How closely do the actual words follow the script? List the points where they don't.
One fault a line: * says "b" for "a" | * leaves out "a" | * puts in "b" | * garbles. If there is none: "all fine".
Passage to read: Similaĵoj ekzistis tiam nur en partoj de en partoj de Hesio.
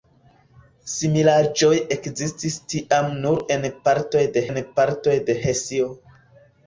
all fine